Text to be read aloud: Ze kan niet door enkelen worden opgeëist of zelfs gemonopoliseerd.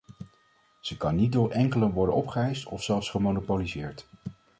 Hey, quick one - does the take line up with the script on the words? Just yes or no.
yes